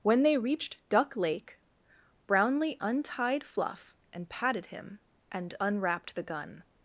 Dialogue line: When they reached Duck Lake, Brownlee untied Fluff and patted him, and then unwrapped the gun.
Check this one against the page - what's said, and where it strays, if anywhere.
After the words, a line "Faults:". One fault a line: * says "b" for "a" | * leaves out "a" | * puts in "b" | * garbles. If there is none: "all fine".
When they reached Duck Lake, Brownlee untied Fluff and patted him, and unwrapped the gun.
Faults:
* leaves out "then"